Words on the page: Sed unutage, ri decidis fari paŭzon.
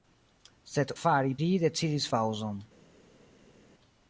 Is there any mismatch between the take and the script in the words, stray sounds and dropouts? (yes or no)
yes